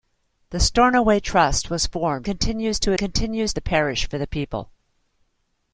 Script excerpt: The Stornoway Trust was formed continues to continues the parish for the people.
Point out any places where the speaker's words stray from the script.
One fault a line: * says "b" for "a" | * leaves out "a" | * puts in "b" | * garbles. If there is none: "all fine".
all fine